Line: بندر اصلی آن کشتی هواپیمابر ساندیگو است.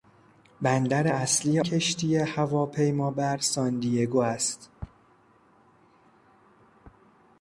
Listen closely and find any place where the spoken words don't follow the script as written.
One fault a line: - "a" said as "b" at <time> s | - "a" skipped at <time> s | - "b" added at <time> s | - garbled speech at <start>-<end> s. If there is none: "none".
- "آن" skipped at 1.6 s